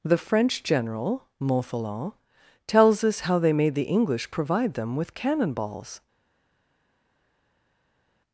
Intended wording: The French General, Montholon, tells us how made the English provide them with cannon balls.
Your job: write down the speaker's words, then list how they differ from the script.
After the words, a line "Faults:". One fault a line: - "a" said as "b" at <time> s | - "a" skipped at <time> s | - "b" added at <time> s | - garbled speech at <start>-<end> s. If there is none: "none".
The French General, Montholon, tells us how they made the English provide them with cannon balls.
Faults:
- "they" added at 3.4 s